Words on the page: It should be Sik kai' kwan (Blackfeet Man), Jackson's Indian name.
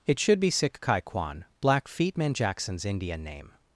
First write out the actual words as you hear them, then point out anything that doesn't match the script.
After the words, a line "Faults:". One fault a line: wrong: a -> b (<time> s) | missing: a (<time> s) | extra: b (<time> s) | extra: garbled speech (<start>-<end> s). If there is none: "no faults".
It should be Sik kai' kwan (Blackfeet Man), Jackson's Indian name.
Faults:
no faults